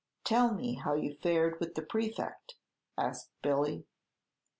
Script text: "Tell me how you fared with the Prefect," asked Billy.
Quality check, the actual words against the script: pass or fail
pass